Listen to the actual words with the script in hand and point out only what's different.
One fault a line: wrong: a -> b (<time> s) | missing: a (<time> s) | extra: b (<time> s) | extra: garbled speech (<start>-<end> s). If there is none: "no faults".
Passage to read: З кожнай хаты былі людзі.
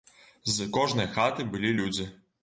no faults